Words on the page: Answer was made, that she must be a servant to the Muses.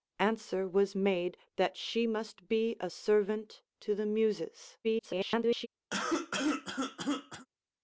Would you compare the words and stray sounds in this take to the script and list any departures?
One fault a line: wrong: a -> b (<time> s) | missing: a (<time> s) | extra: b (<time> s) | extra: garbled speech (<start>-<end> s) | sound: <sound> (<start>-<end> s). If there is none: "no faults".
extra: garbled speech (4.8-5.7 s)
sound: cough (5.9-7.5 s)